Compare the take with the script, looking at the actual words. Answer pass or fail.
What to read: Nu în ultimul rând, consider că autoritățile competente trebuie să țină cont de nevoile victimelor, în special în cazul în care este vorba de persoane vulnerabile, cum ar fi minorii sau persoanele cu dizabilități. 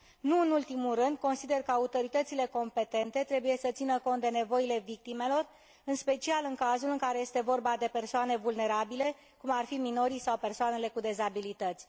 pass